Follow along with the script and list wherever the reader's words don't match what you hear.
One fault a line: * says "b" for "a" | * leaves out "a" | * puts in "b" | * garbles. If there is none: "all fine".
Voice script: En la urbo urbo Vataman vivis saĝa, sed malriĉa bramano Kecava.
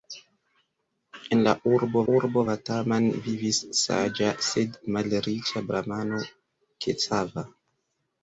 all fine